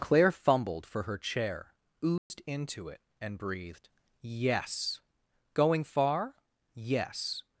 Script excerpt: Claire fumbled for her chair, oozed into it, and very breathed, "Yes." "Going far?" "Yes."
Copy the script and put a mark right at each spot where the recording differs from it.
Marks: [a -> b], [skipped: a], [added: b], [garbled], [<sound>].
Claire fumbled for her chair, oozed [dropout] into it, and [skipped: very] breathed, "Yes." "Going far?" "Yes."